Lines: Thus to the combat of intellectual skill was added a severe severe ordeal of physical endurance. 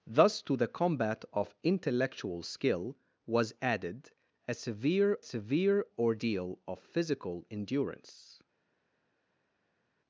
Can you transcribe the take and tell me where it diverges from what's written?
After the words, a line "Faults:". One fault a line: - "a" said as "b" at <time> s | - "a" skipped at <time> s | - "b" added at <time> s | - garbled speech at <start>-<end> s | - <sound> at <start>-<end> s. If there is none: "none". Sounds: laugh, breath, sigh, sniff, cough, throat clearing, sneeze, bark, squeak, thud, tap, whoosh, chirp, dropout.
Thus to the combat of intellectual skill was added a severe severe ordeal of physical endurance.
Faults:
none